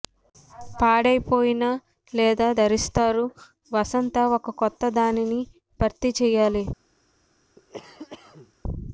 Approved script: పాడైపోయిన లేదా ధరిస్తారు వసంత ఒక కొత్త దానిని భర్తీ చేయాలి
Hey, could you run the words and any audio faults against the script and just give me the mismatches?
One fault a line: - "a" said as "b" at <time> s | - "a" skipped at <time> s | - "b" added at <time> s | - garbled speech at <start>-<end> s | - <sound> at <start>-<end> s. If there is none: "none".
- cough at 7.6-8.5 s